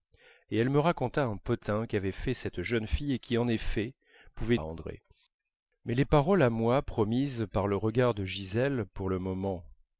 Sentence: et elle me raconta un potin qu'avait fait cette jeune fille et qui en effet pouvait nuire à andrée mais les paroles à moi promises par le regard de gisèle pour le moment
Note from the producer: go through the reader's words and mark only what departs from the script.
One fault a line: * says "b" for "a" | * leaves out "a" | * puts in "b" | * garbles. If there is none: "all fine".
* leaves out "nuire"